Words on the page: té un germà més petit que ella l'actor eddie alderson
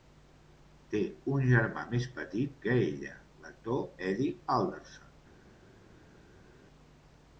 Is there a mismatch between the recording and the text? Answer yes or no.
no